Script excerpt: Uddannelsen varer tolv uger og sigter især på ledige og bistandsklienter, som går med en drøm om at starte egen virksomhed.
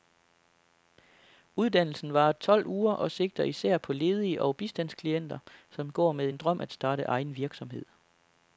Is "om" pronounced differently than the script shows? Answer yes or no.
yes